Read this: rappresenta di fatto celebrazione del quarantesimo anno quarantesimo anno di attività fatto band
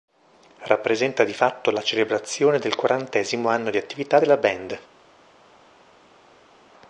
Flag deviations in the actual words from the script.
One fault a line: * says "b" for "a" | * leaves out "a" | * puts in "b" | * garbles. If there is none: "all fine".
* puts in "la"
* leaves out "quarantesimo anno"
* says "della" for "fatto"